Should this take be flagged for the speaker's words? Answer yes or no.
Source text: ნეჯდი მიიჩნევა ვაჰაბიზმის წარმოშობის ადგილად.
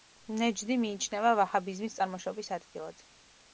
no